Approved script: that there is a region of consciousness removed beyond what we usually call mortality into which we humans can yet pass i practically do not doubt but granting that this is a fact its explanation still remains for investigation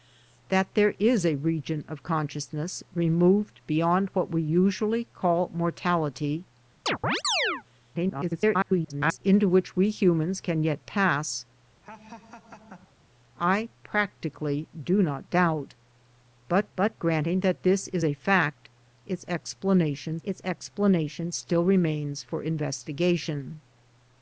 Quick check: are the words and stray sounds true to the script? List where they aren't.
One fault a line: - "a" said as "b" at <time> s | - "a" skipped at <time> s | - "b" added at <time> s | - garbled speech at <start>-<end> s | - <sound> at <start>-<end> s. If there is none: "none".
- chirp at 6.9-7.6 s
- garbled speech at 7.9-9.2 s
- laugh at 11.8-13.0 s
- "but" added at 16.8 s
- "its explanation" added at 20.2 s